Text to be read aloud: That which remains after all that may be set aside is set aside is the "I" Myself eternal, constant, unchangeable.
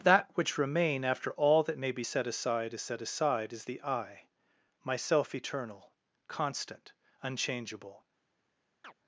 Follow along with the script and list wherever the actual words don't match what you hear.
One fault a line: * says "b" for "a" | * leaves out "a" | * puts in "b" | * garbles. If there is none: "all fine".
* says "remain" for "remains"